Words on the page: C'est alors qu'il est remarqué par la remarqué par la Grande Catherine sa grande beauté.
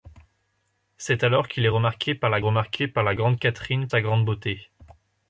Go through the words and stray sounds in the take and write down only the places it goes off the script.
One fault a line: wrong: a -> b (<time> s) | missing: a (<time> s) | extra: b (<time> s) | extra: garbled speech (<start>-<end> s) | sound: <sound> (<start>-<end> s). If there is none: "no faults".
no faults